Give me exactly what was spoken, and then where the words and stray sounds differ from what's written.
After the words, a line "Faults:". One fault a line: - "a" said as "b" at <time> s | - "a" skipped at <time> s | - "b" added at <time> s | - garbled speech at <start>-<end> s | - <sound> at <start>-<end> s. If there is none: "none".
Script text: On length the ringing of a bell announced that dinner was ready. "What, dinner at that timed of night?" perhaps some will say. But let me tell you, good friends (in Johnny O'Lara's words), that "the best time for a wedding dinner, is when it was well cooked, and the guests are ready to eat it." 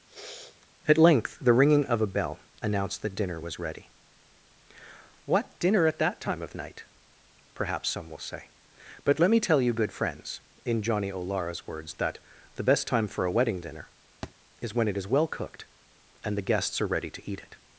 At length the ringing of a bell announced that dinner was ready. "What, dinner at that time of night?" perhaps some will say. But let me tell you, good friends (in Johnny O'Lara's words), that "the best time for a wedding dinner, is when it is well cooked, and the guests are ready to eat it."
Faults:
- sniff at 0.1-0.7 s
- "On" said as "At" at 0.9 s
- "timed" said as "time" at 6.2 s
- thud at 14.2-14.3 s
- "was" said as "is" at 15.0 s